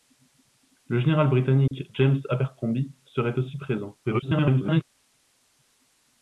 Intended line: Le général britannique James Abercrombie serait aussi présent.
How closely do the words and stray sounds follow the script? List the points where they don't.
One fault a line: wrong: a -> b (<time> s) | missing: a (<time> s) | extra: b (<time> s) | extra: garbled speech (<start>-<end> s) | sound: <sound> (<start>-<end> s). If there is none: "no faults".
sound: dropout (1.7-1.7 s)
extra: garbled speech (4.0-4.8 s)